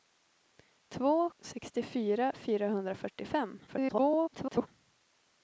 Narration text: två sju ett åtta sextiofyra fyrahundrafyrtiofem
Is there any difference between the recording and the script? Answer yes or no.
yes